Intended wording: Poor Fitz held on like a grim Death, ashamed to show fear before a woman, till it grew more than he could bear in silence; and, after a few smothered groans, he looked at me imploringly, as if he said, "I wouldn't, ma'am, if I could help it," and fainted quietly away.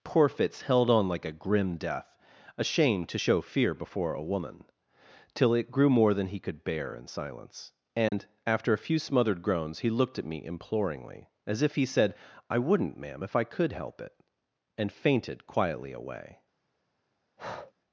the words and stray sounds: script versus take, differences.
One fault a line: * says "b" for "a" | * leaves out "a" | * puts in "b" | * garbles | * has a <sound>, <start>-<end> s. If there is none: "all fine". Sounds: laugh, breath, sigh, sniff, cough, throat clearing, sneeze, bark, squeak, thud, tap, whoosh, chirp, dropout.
* has a dropout, 8.1-8.1 s
* has a breath, 17.4-17.7 s